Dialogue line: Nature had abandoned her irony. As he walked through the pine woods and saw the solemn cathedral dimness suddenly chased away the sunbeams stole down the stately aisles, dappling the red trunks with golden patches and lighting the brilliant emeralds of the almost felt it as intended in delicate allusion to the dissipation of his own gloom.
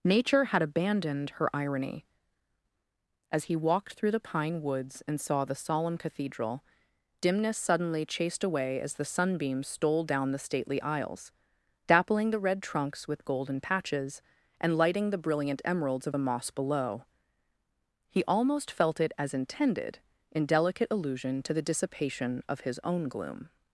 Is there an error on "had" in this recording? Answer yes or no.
no